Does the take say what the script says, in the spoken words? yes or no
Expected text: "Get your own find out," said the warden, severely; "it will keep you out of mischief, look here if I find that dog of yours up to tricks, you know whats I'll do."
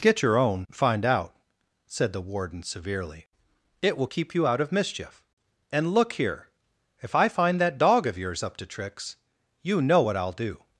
no